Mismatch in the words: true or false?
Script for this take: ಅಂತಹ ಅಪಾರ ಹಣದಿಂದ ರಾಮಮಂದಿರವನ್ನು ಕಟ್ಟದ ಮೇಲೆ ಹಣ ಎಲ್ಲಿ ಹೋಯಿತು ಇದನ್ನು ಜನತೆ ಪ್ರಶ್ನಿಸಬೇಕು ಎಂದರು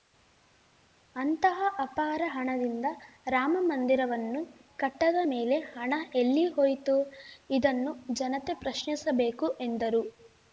false